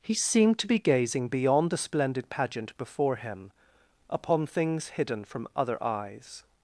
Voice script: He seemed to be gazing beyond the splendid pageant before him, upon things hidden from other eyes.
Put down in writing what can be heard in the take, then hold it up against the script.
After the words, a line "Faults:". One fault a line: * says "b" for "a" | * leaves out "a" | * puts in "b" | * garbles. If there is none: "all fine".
He seemed to be gazing beyond the splendid pageant before him, upon things hidden from other eyes.
Faults:
all fine